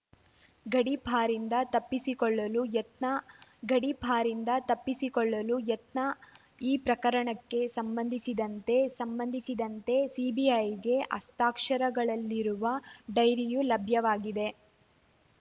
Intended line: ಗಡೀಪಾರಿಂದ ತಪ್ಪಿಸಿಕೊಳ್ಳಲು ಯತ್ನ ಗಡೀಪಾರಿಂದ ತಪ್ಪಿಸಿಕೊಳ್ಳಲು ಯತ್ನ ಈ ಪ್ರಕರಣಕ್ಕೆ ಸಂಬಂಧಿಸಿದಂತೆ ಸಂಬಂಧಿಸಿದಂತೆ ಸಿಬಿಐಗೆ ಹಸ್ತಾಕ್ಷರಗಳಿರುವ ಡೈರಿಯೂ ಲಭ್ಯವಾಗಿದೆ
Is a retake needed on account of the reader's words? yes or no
no